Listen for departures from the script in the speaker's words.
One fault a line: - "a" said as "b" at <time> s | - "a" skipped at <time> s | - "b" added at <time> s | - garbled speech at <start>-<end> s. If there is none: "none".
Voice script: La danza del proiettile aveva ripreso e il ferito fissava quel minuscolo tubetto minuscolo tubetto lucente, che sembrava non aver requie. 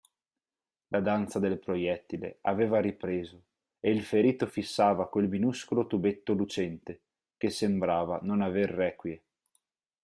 - "minuscolo tubetto" skipped at 6.3 s